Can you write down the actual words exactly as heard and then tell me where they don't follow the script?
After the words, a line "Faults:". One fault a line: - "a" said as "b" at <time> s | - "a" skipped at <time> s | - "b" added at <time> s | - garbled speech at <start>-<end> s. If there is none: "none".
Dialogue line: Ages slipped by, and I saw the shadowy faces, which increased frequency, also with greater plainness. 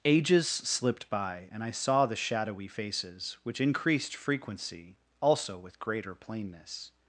Ages slipped by, and I saw the shadowy faces, which increased frequency, also with greater plainness.
Faults:
none